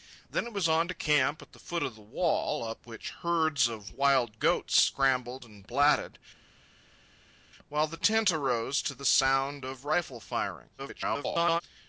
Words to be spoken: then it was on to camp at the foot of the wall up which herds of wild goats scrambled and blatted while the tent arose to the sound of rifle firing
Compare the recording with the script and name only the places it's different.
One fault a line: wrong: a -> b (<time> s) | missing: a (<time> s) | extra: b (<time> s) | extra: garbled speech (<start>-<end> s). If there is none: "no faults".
extra: garbled speech (10.8-11.6 s)